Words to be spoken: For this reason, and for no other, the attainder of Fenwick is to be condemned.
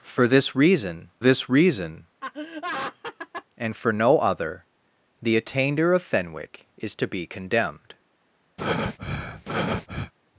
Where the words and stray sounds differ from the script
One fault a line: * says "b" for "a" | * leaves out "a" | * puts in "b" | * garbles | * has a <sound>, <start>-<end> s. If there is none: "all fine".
* puts in "this reason"
* has a laugh, 2.2-3.5 s
* has a breath, 8.6-10.1 s